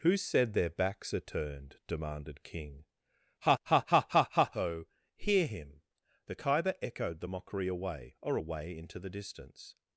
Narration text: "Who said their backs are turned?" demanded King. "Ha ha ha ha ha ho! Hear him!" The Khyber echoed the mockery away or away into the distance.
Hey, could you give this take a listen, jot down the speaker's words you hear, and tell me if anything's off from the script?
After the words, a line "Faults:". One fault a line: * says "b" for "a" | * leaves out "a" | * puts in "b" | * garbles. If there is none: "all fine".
"Who said their backs are turned?" demanded King. "Ha ha ha ha ha ho! Hear him!" The Khyber echoed the mockery away or away into the distance.
Faults:
all fine